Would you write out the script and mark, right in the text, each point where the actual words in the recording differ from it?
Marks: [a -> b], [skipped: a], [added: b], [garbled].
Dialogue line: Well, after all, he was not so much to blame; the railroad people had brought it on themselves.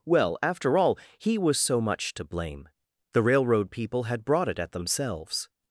Well, after all, he was [skipped: not] so much to blame; the railroad people had brought it [on -> at] themselves.